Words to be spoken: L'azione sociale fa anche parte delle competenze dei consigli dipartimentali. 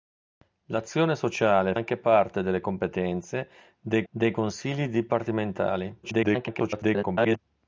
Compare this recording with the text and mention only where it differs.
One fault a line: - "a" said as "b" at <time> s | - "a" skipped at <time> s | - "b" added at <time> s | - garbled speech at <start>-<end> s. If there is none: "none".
- "fa" skipped at 1.8 s
- "dei" added at 4.1 s
- garbled speech at 6.0-7.4 s